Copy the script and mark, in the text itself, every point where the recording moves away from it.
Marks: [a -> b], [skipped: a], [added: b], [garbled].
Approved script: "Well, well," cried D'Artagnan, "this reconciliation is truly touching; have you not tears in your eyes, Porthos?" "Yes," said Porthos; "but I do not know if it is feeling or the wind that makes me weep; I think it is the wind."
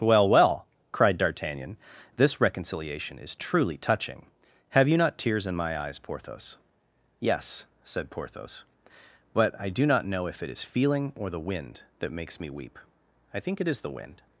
"Well, well," cried D'Artagnan, "this reconciliation is truly touching; have you not tears in [your -> my] eyes, Porthos?" "Yes," said Porthos; "but I do not know if it is feeling or the wind that makes me weep; I think it is the wind."